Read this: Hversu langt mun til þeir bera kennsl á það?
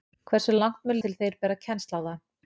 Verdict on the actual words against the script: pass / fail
pass